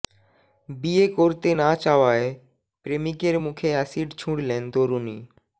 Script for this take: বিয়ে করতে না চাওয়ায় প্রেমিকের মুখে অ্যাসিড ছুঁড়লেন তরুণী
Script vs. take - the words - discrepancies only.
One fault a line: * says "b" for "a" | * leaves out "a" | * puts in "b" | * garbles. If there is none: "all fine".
all fine